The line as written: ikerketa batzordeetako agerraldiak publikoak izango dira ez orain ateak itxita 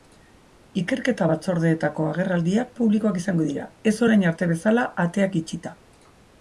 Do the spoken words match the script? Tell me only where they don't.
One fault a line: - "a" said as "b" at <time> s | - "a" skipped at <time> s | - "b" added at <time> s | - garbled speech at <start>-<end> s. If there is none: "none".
- "arte bezala" added at 4.3 s